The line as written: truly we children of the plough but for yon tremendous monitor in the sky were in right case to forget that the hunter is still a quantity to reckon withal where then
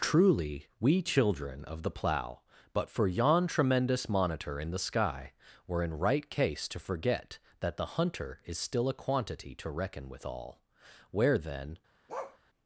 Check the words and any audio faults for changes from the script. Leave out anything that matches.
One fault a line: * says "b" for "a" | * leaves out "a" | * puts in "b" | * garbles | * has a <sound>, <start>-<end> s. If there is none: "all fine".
* has a bark, 12.1-12.4 s